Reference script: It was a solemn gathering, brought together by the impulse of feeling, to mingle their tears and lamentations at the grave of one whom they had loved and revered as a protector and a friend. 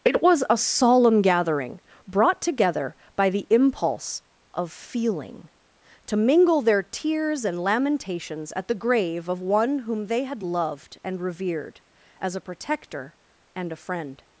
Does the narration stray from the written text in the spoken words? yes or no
no